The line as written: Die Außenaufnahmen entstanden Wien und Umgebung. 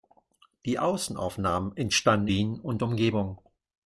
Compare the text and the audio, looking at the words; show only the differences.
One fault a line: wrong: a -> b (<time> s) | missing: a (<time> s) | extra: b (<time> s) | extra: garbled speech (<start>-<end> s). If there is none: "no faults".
no faults